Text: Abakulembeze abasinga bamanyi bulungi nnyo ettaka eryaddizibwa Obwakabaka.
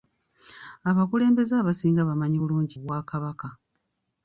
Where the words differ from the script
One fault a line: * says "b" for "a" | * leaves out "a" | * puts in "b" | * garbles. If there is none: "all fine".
* leaves out "nnyo ettaka eryaddizibwa"